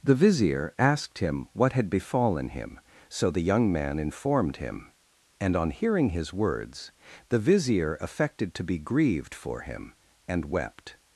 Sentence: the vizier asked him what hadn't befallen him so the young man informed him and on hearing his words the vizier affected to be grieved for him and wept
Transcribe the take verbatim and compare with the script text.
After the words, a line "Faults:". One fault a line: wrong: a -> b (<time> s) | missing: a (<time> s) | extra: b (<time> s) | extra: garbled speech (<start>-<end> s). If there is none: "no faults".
the vizier asked him what had befallen him so the young man informed him and on hearing his words the vizier affected to be grieved for him and wept
Faults:
wrong: hadn't -> had (1.7 s)